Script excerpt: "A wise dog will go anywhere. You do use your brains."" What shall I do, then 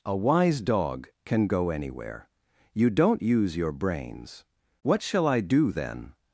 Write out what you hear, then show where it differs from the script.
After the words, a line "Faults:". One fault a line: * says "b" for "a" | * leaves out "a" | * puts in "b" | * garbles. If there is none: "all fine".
"A wise dog can go anywhere. You don't use your brains."" What shall I do, then
Faults:
* says "can" for "will"
* says "don't" for "do"